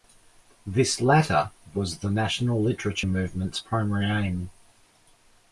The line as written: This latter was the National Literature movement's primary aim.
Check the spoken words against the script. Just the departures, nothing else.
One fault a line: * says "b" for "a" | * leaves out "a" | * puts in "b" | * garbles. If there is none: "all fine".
all fine